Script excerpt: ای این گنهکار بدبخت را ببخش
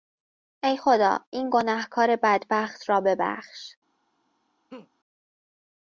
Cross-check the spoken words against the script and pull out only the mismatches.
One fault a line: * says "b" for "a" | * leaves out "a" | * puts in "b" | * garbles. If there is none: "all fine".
* puts in "خدا"